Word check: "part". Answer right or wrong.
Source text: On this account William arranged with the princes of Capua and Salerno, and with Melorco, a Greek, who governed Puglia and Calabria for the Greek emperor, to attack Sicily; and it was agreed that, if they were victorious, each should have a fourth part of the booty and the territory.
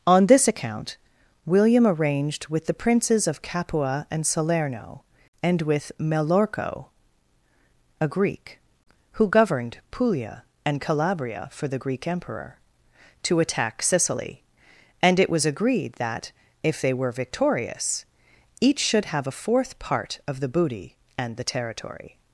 right